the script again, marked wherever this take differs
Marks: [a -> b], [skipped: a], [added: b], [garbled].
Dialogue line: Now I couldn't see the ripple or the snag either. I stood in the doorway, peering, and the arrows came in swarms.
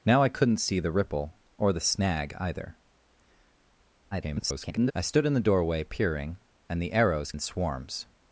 Now I couldn't see the ripple or the snag either. [garbled] I stood in the doorway, peering, and the arrows [skipped: came] in swarms.